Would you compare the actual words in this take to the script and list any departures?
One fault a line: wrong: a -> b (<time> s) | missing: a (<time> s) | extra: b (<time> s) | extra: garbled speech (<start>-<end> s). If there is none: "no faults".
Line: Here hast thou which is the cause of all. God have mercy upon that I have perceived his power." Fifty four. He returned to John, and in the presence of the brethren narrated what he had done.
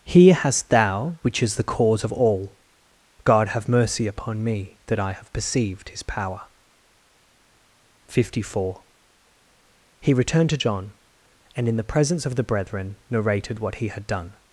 extra: me (4.4 s)